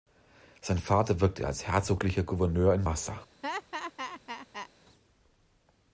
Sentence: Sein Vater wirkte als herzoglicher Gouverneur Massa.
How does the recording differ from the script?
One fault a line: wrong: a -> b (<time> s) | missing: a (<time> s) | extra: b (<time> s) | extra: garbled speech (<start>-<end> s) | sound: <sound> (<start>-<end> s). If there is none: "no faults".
extra: in (2.7 s)
sound: laugh (3.4-4.7 s)